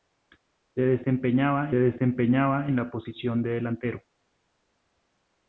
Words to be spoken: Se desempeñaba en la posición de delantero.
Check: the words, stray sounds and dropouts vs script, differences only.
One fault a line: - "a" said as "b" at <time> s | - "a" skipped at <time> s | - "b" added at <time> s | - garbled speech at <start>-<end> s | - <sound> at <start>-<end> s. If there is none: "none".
- "desempeñaba" added at 1.7 s